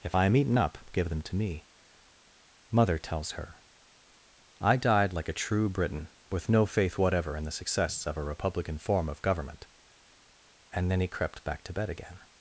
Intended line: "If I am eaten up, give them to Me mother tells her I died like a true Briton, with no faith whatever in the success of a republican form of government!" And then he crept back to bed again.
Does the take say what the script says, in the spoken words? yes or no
yes